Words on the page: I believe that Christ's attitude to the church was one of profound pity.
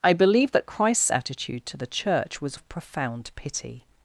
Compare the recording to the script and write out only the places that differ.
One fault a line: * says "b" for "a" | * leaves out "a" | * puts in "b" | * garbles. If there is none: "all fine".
* leaves out "one"